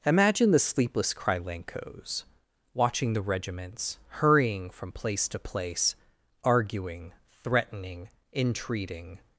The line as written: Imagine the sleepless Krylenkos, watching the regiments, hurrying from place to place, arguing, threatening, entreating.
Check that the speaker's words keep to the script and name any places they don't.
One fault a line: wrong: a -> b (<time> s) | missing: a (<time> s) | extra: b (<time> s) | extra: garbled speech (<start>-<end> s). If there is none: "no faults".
no faults